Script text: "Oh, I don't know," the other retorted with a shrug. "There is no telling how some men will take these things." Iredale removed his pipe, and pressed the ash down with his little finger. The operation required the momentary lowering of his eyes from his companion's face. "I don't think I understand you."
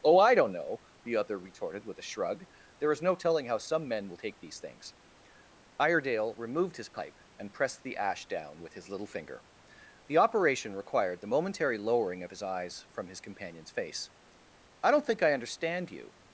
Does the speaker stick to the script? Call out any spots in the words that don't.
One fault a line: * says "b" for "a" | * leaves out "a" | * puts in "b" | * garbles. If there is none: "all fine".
all fine